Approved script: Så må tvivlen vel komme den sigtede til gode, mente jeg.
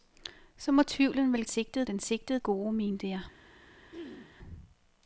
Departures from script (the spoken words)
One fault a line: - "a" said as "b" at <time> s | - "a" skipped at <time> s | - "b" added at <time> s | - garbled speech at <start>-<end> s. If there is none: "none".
- "komme" said as "sigtede" at 1.5 s
- "til" skipped at 2.4 s